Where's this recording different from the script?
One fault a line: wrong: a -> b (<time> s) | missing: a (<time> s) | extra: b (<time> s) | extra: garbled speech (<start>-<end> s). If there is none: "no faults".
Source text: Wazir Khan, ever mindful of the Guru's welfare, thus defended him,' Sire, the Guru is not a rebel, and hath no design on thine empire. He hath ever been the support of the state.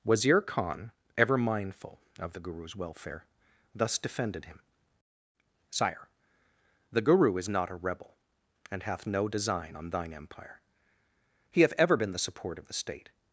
no faults